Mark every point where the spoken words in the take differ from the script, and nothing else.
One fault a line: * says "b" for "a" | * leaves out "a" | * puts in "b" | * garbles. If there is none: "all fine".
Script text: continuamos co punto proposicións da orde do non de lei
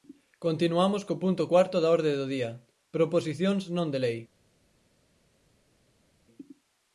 * says "cuarto" for "proposicións"
* puts in "día proposicións"